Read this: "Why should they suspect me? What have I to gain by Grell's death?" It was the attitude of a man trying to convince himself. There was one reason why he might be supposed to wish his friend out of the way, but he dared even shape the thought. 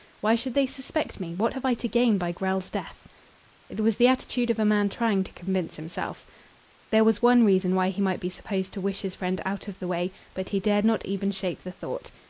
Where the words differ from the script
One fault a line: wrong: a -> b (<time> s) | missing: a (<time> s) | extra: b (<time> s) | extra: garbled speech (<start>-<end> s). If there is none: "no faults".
extra: not (10.9 s)